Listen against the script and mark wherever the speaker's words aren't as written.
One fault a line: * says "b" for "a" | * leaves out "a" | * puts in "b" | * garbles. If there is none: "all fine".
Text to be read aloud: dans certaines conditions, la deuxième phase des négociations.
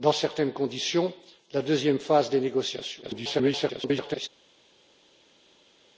* garbles